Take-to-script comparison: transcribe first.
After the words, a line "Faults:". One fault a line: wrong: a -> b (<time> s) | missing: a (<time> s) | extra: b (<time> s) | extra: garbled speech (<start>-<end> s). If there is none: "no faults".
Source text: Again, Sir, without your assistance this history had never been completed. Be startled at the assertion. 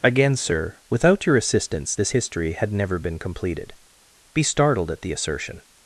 Again, Sir, without your assistance this history had never been completed. Be startled at the assertion.
Faults:
no faults